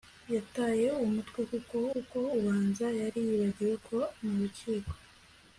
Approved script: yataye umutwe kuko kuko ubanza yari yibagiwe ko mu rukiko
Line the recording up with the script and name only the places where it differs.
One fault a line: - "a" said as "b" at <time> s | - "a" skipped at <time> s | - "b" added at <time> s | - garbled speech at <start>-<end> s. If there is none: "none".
none